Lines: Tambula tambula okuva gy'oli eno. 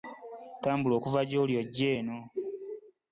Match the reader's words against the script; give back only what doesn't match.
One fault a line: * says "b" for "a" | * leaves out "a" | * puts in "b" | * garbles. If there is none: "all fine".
* leaves out "tambula"
* puts in "ojje"